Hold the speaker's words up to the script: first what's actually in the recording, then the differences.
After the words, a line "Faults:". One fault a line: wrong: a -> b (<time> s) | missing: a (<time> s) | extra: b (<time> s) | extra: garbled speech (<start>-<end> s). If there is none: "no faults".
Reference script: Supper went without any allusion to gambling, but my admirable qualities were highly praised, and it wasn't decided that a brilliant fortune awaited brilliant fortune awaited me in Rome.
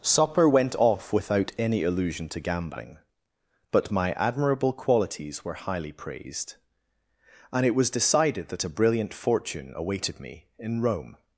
Supper went off without any allusion to gambling, but my admirable qualities were highly praised, and it was decided that a brilliant fortune awaited me in Rome.
Faults:
extra: off (0.8 s)
wrong: wasn't -> was (7.8 s)
missing: brilliant fortune awaited (10.2 s)